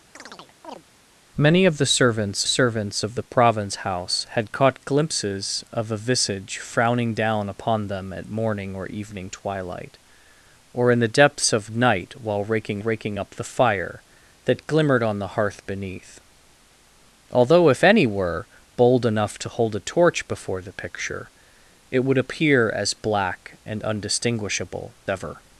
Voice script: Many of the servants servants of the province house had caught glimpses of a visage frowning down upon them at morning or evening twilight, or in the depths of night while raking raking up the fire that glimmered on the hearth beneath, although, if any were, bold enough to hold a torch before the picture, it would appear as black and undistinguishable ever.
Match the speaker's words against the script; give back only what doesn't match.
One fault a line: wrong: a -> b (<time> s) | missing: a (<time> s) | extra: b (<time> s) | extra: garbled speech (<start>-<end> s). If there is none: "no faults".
no faults